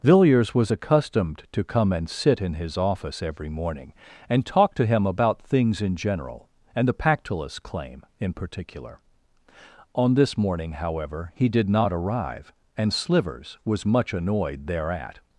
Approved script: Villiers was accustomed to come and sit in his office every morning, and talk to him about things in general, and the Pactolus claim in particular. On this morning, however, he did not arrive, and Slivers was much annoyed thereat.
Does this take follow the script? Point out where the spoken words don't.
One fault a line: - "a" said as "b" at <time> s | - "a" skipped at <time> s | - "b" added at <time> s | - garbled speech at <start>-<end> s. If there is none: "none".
none